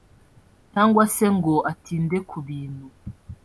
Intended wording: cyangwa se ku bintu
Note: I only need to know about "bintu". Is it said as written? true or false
true